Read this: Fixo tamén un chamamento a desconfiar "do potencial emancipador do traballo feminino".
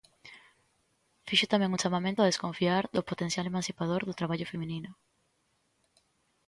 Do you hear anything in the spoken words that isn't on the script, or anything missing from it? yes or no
no